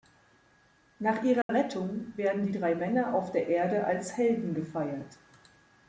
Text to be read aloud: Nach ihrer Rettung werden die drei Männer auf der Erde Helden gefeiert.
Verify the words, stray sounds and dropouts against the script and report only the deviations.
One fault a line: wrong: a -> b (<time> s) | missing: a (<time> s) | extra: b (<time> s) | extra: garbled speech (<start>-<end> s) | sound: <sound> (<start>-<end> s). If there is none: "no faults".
sound: dropout (1.4-1.5 s)
extra: als (3.9 s)